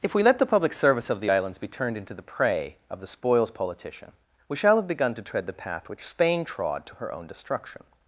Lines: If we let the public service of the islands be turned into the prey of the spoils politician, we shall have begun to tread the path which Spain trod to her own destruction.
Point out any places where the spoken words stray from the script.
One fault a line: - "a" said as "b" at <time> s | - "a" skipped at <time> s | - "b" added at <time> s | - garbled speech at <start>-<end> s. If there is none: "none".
none